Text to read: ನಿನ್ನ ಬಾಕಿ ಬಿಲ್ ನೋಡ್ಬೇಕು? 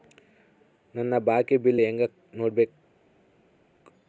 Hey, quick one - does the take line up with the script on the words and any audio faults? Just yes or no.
no